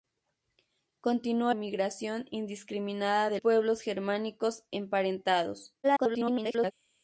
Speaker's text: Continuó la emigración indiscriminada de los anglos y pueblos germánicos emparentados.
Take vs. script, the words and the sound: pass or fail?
fail